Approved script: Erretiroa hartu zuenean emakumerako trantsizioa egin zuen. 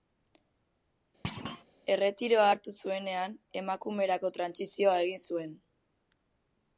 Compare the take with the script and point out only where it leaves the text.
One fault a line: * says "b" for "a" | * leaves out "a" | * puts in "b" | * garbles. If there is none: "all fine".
all fine